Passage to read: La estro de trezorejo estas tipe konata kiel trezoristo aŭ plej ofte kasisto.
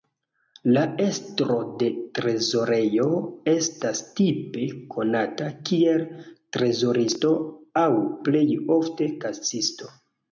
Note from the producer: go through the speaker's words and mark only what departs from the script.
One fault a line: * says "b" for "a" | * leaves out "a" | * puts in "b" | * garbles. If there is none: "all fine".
all fine